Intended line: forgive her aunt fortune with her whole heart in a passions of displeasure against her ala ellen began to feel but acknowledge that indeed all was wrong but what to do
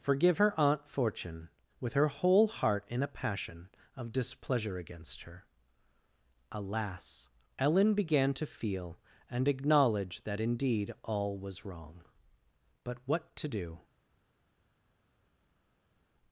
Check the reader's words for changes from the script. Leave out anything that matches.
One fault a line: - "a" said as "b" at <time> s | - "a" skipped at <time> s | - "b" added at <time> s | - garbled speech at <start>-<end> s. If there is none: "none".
- "passions" said as "passion" at 3.1 s
- "ala" said as "alas" at 6.5 s
- "but" said as "and" at 9.3 s